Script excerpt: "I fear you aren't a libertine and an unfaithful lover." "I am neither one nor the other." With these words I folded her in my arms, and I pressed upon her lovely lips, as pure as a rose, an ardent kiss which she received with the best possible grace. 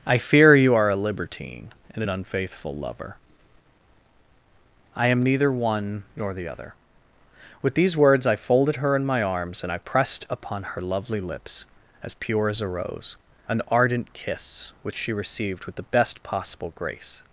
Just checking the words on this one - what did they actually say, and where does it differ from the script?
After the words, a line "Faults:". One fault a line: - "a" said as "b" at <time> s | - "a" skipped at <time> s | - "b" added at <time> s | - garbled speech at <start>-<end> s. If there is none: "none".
"I fear you are a libertine and an unfaithful lover." "I am neither one nor the other." With these words I folded her in my arms, and I pressed upon her lovely lips, as pure as a rose, an ardent kiss which she received with the best possible grace.
Faults:
- "aren't" said as "are" at 0.7 s